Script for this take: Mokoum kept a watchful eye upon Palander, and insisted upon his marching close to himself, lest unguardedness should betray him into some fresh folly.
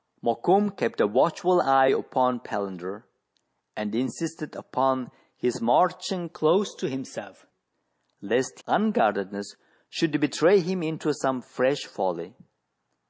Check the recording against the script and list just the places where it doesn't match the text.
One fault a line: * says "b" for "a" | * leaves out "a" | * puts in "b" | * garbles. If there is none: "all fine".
all fine